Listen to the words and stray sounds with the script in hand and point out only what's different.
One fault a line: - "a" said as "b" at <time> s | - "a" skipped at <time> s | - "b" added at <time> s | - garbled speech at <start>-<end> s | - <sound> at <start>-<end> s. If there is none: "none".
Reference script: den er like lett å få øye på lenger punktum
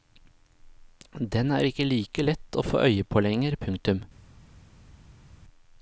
- "ikke" added at 1.7 s